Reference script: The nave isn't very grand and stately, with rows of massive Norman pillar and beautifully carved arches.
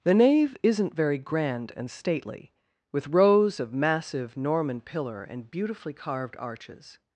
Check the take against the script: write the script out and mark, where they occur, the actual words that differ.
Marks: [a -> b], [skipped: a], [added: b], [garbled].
The nave isn't very grand and stately, with rows of massive Norman pillar and beautifully carved arches.